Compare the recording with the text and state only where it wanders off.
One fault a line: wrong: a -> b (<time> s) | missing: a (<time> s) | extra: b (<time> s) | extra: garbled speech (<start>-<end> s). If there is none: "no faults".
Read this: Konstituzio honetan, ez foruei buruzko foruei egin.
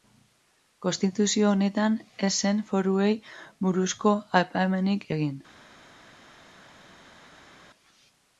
extra: zen (2.5 s)
wrong: foruei -> aipamenik (4.4 s)